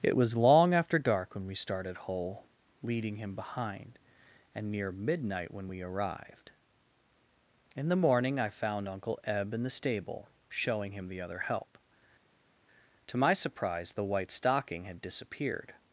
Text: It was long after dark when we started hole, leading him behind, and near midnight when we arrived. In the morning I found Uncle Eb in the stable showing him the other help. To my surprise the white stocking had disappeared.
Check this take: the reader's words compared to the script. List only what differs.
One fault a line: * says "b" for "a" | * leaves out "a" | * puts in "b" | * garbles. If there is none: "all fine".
all fine